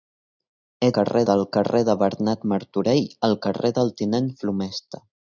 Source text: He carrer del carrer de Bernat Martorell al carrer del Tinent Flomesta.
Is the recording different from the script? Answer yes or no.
no